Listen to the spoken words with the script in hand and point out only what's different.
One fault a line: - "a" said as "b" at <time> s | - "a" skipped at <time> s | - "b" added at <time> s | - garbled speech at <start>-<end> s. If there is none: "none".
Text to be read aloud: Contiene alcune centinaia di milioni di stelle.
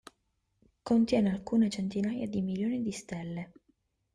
none